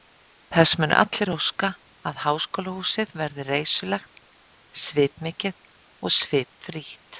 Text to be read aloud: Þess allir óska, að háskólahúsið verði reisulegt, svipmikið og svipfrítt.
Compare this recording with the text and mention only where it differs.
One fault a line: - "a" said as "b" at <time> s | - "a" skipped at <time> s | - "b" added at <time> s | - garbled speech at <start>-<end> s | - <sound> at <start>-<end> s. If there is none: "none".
- "munu" added at 0.8 s